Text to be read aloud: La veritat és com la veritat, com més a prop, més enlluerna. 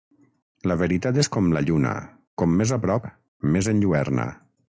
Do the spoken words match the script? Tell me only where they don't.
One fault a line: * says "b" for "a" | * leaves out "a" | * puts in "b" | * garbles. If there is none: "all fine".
* says "lluna" for "veritat"